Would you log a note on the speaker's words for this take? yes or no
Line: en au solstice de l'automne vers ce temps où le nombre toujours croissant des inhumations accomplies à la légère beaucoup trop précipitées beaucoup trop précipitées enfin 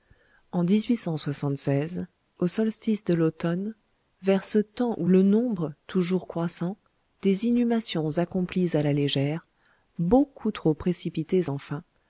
yes